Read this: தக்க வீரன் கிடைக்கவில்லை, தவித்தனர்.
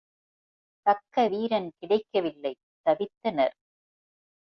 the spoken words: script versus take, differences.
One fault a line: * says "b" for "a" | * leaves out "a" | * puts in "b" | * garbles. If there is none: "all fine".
all fine